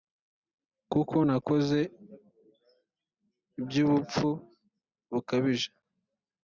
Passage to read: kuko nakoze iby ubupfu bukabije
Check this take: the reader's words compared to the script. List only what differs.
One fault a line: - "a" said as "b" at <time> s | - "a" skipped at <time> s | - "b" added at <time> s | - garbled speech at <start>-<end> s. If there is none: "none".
none